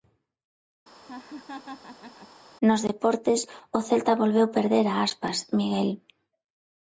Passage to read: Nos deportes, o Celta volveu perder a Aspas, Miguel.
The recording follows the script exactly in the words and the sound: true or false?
false